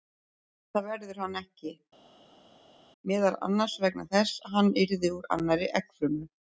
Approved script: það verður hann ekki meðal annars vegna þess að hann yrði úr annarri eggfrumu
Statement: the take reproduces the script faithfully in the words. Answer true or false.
true